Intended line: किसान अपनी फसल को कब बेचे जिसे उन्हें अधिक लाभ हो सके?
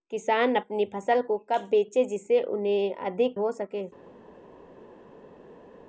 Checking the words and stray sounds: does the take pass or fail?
fail